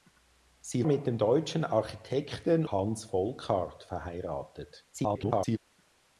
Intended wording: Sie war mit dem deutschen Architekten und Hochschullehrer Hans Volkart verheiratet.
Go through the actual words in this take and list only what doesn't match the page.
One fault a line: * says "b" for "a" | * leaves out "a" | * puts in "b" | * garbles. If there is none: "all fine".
* leaves out "war"
* leaves out "und Hochschullehrer"
* garbles